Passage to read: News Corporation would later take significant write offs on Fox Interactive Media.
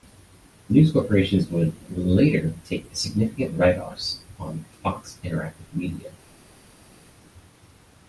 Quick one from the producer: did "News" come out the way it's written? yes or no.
yes